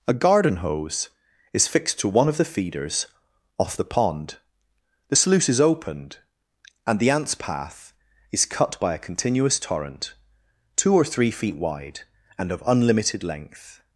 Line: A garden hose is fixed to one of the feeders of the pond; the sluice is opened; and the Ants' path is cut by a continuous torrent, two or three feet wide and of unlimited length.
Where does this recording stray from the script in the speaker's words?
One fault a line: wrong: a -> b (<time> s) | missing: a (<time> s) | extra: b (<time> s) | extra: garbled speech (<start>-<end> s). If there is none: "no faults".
wrong: of -> off (3.6 s)